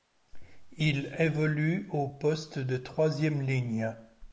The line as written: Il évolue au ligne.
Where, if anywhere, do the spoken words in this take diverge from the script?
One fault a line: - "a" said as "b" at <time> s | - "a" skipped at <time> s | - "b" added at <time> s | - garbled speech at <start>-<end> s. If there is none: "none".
- "poste de troisième" added at 2.1 s